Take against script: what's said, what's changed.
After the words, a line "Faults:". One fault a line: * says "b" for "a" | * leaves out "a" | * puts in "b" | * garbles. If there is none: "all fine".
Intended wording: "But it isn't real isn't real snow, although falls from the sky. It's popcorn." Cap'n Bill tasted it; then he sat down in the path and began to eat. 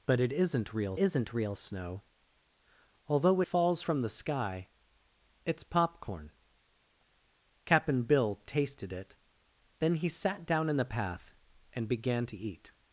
"But it isn't real isn't real snow, although falls from the sky. It's popcorn." Cap'n Bill tasted it; then he sat down in the path and began to eat.
Faults:
all fine